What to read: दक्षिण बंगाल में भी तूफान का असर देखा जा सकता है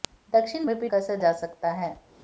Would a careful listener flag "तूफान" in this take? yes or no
yes